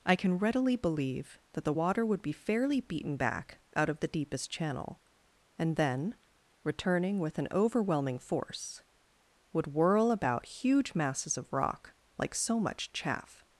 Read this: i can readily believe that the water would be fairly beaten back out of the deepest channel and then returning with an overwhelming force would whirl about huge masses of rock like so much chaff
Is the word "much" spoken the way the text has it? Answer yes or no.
yes